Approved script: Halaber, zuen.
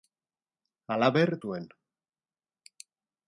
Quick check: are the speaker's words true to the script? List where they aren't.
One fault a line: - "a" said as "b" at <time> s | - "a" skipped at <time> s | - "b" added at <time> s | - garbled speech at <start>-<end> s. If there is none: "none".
none